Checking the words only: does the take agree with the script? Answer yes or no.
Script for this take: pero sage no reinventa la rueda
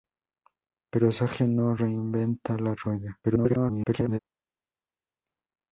no